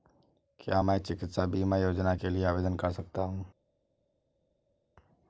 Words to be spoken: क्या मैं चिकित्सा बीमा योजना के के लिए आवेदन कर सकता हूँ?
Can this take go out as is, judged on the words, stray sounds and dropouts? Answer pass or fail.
fail